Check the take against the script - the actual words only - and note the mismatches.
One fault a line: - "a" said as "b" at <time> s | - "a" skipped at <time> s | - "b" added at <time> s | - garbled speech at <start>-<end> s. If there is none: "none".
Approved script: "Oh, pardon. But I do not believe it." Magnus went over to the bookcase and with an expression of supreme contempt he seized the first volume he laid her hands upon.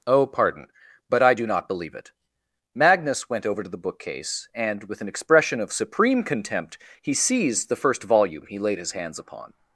- "her" said as "his" at 8.8 s